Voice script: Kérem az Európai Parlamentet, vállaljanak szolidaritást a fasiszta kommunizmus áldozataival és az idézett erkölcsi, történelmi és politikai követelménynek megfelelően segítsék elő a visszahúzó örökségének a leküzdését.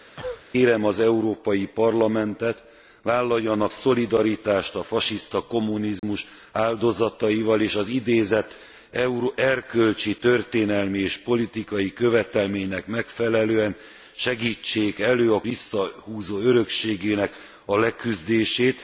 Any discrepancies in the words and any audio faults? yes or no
yes